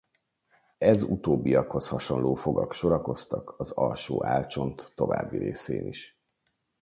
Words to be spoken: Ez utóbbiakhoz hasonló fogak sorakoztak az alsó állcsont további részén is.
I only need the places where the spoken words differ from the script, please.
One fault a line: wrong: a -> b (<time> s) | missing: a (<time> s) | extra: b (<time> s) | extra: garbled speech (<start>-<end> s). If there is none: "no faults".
no faults